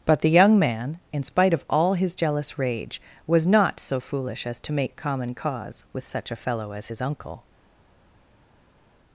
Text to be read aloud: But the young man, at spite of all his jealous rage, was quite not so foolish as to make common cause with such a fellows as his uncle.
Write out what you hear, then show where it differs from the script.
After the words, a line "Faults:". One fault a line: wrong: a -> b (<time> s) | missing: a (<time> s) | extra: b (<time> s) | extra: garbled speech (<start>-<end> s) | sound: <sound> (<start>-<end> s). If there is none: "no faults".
But the young man, in spite of all his jealous rage, was not so foolish as to make common cause with such a fellow as his uncle.
Faults:
wrong: at -> in (1.1 s)
missing: quite (3.5 s)
wrong: fellows -> fellow (6.4 s)